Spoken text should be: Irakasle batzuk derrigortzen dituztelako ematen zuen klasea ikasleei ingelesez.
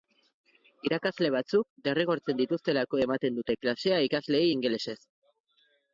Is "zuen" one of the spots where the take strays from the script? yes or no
yes